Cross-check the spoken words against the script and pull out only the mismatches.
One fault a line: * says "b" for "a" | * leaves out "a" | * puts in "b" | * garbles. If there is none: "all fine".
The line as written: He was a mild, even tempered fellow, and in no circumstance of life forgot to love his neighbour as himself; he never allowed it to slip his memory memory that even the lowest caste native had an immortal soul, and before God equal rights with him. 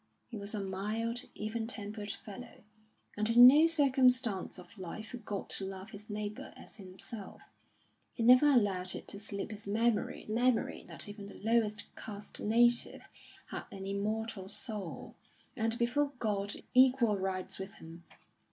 all fine